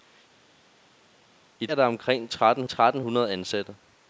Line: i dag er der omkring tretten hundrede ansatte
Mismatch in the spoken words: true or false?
true